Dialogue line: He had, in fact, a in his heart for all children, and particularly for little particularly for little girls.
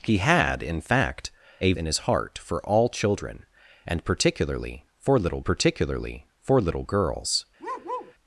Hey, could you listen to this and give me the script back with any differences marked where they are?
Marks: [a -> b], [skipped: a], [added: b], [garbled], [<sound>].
He had, in fact, a in his heart for all children, and particularly for little particularly for little girls. [bark]